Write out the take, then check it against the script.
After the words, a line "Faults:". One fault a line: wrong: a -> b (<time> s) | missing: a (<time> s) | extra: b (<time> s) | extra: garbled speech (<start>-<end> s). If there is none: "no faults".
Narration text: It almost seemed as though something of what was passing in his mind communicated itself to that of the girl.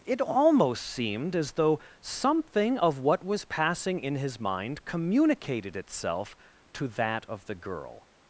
It almost seemed as though something of what was passing in his mind communicated itself to that of the girl.
Faults:
no faults